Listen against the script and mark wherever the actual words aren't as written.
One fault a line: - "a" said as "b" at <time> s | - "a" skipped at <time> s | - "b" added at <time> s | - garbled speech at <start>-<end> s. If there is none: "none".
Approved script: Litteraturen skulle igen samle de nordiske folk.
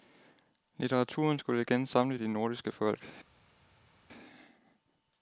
none